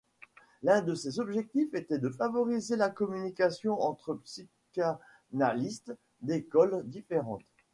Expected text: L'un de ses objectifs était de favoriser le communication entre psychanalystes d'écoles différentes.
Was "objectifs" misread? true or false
false